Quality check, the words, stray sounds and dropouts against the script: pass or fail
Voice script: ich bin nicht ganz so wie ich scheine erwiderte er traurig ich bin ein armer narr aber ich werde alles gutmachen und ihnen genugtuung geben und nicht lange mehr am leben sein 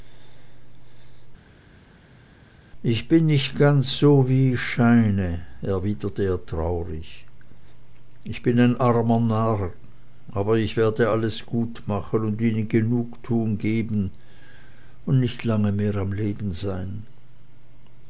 pass